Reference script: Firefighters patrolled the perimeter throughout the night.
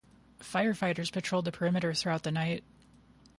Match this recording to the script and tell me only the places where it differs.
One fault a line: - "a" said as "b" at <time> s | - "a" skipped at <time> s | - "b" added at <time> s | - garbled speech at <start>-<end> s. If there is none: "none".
none